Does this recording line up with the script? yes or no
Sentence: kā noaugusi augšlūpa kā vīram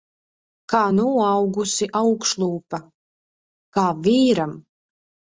yes